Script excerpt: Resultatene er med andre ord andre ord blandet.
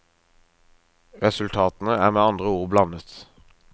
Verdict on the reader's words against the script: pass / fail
fail